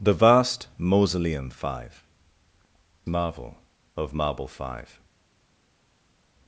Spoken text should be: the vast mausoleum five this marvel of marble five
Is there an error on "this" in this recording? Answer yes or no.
yes